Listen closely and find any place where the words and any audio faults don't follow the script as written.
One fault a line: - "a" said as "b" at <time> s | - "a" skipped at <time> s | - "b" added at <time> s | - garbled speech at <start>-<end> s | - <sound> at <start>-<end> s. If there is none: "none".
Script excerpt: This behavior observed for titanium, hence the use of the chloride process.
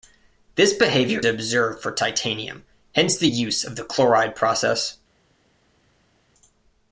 none